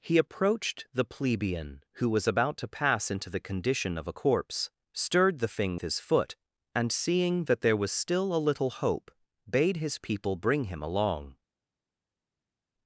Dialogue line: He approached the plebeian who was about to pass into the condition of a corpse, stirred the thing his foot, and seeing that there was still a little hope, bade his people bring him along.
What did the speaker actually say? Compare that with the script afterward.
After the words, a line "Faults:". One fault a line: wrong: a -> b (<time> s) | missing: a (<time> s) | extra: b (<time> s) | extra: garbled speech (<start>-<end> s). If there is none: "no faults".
He approached the plebeian who was about to pass into the condition of a corpse, stirred the thing his foot, and seeing that there was still a little hope, bade his people bring him along.
Faults:
no faults